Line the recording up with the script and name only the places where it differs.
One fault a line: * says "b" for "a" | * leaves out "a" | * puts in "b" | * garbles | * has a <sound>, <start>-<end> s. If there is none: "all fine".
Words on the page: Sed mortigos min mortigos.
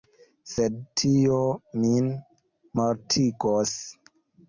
* says "tio" for "mortigos"